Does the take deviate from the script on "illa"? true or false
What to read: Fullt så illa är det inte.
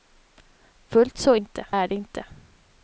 true